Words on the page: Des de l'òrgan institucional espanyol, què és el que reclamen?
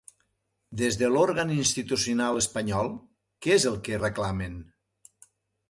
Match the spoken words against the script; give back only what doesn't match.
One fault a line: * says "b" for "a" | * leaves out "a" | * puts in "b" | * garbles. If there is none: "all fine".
all fine